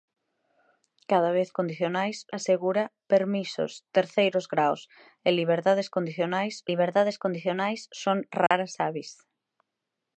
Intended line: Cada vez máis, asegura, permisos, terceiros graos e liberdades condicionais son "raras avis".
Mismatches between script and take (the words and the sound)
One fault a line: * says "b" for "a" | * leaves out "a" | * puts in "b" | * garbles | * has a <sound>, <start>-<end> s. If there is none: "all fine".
* says "condicionais" for "máis"
* puts in "liberdades condicionais"
* has a dropout, 8.5-8.5 s